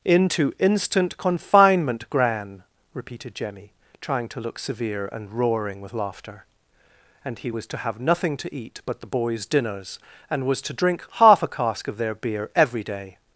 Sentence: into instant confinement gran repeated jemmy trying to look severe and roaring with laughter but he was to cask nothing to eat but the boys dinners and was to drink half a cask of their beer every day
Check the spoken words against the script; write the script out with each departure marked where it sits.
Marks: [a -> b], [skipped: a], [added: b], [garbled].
into instant confinement gran repeated jemmy trying to look severe and roaring with laughter [but -> and] he was to [cask -> have] nothing to eat but the boys dinners and was to drink half a cask of their beer every day